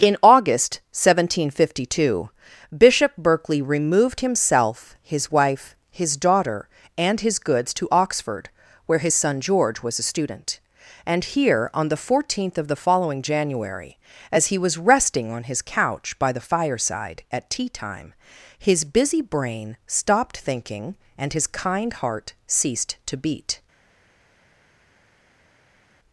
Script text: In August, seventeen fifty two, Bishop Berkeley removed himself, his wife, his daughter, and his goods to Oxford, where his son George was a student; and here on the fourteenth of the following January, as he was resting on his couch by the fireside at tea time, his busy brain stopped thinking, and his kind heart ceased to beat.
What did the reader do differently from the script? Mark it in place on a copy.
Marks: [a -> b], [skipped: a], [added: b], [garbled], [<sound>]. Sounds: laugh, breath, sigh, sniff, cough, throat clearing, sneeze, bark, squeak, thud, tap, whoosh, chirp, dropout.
In August, seventeen fifty two, Bishop Berkeley removed himself, his wife, his daughter, and his goods to Oxford, where his son George was a student; and here on the fourteenth of the following January, as he was resting on his couch by the fireside at tea time, his busy brain stopped thinking, and his kind heart ceased to beat.